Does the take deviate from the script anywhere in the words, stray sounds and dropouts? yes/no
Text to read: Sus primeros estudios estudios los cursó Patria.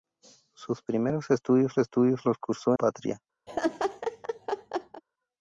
yes